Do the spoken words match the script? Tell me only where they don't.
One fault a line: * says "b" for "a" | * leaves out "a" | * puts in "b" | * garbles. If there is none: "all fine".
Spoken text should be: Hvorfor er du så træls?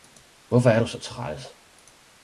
all fine